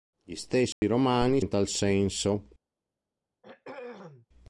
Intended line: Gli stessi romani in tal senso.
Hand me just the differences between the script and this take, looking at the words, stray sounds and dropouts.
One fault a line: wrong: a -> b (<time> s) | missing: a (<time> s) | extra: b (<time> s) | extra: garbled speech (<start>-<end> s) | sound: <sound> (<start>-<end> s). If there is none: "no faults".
sound: dropout (0.7-0.8 s)
sound: throat clearing (3.4-4.3 s)